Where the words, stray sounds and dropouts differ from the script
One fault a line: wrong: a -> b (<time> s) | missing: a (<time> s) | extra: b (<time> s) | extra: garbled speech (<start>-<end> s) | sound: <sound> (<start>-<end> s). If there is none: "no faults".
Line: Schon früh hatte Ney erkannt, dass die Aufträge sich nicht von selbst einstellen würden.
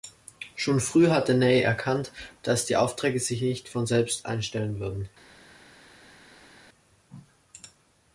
no faults